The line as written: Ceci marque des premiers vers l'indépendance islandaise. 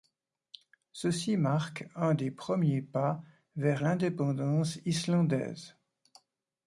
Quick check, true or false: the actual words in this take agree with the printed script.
false